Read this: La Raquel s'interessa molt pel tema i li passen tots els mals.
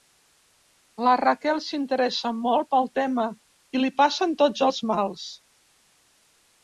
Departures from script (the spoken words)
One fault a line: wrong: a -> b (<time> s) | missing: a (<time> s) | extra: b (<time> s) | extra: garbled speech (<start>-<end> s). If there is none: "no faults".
no faults